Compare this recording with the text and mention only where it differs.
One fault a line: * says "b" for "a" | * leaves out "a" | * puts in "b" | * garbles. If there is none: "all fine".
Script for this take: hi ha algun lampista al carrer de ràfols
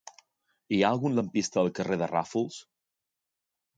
all fine